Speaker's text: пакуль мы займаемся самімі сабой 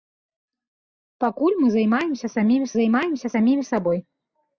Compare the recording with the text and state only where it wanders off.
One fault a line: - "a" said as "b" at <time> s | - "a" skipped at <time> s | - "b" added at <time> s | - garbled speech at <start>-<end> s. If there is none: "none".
- "займаемся самімі" added at 2.8 s